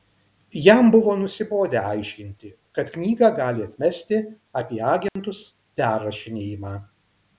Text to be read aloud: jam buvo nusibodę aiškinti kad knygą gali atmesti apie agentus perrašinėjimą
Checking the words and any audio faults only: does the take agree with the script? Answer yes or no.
no